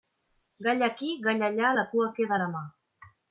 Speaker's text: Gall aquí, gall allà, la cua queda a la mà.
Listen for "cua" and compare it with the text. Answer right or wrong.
right